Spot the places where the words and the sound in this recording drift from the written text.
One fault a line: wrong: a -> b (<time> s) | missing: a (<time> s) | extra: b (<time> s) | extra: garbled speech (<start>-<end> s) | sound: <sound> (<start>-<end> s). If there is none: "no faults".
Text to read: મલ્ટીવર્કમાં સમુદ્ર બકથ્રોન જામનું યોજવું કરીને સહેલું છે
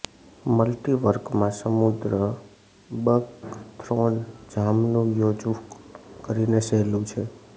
no faults